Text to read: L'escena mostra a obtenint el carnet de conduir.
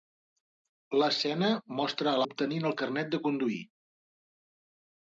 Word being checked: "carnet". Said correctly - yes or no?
yes